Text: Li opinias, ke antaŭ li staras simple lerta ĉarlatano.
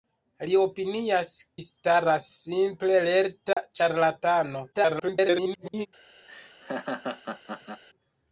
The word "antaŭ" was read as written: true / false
false